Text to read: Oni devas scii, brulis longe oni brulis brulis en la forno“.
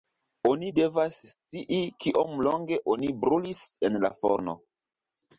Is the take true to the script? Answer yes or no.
no